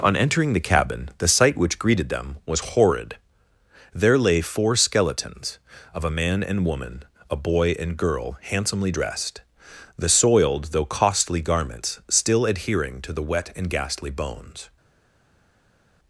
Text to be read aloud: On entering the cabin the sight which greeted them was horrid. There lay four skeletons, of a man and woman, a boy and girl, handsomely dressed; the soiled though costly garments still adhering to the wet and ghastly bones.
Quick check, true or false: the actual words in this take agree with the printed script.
true